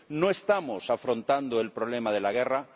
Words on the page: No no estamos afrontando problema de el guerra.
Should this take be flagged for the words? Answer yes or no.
yes